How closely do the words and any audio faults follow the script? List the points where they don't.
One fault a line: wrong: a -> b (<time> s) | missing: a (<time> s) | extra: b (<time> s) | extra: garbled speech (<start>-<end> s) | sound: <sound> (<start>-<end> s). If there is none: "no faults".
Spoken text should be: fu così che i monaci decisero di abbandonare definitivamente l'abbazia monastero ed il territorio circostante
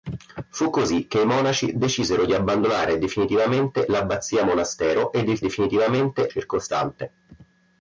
wrong: territorio -> definitivamente (5.4 s)